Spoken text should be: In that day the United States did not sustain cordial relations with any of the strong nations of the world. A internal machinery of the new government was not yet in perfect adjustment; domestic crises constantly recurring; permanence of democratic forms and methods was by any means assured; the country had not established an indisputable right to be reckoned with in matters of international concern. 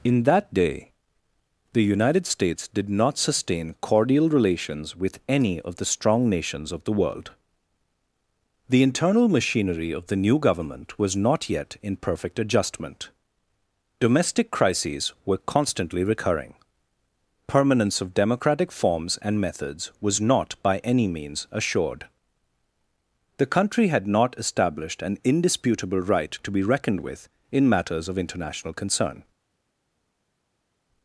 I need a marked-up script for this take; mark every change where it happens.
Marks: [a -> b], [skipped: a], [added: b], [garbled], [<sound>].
In that day the United States did not sustain cordial relations with any of the strong nations of the world. [A -> The] internal machinery of the new government was not yet in perfect adjustment; domestic crises [added: were] constantly recurring; permanence of democratic forms and methods was [added: not] by any means assured; the country had not established an indisputable right to be reckoned with in matters of international concern.